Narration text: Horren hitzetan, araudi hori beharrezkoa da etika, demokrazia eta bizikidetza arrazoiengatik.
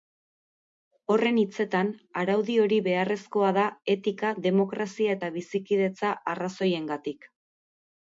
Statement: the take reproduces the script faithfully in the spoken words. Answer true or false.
true